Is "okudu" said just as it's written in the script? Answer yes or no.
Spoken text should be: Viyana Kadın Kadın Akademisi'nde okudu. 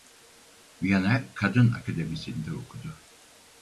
yes